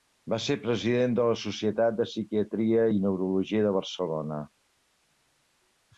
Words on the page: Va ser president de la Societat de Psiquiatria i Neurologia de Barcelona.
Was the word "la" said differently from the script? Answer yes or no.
no